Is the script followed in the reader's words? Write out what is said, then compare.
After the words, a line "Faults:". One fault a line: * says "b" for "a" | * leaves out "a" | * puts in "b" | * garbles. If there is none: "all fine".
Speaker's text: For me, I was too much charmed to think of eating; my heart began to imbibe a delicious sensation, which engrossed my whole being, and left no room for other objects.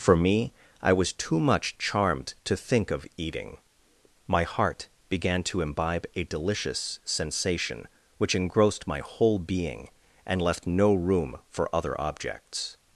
For me, I was too much charmed to think of eating; my heart began to imbibe a delicious sensation, which engrossed my whole being, and left no room for other objects.
Faults:
all fine